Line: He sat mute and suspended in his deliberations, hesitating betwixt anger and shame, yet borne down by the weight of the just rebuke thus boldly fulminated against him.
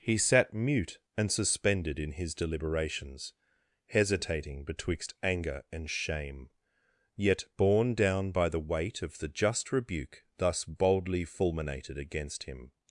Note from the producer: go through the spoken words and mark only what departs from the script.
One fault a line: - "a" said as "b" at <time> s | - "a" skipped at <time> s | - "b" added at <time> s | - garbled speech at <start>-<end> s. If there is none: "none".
none